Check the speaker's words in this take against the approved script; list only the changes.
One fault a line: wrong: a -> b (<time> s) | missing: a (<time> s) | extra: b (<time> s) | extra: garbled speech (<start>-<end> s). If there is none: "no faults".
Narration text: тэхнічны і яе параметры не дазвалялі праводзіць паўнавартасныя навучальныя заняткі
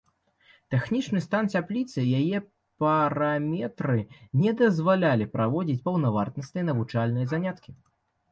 extra: стан цяпліцы (1.2 s)